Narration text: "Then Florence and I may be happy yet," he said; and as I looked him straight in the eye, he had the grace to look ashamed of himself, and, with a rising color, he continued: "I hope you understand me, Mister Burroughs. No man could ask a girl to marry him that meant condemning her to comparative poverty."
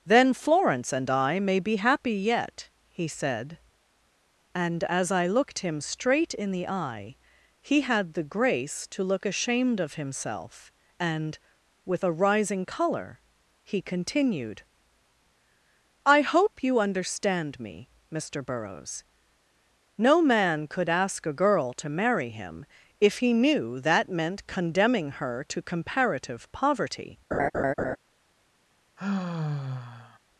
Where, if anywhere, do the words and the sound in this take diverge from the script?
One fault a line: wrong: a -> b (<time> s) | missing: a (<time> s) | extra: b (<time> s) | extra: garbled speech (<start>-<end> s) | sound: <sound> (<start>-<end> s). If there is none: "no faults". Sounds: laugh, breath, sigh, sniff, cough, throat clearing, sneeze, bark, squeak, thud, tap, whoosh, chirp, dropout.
extra: if he knew (23.0 s)
sound: laugh (27.3-28.0 s)
sound: sigh (29.0-30.2 s)